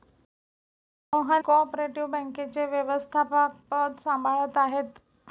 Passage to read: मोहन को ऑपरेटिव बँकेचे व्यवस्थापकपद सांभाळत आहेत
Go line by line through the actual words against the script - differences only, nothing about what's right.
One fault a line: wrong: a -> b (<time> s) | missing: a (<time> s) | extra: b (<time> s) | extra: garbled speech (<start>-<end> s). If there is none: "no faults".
no faults